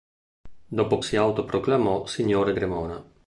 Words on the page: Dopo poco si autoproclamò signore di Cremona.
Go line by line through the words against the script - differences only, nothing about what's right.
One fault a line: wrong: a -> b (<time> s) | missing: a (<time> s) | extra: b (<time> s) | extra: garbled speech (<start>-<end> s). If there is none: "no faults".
missing: poco (1.0 s)
missing: di (2.5 s)